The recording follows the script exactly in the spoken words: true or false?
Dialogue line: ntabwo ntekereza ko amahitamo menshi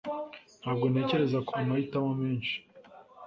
true